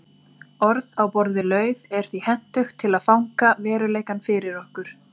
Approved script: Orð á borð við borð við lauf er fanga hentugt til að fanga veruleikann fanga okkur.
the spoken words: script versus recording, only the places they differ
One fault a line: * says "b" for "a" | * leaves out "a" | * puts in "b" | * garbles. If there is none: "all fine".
* leaves out "borð við"
* says "því" for "fanga"
* says "fyrir" for "fanga"